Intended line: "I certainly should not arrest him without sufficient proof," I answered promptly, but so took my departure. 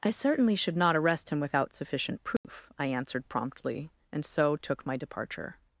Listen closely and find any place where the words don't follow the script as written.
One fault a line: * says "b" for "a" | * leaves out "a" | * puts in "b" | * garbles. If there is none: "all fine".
* says "and" for "but"